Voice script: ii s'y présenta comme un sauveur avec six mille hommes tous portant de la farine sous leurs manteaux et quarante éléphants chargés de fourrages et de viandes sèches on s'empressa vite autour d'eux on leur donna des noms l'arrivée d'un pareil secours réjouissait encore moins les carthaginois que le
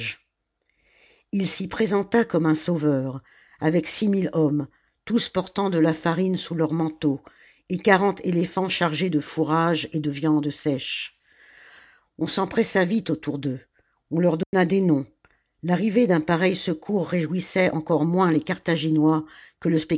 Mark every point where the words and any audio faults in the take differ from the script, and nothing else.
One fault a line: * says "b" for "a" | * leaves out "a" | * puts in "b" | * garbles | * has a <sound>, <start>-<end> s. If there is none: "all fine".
* has a dropout, 14.4-14.5 s